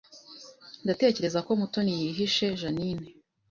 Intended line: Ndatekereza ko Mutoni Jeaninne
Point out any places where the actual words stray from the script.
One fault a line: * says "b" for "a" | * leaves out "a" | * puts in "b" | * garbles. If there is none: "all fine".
* puts in "yihishe"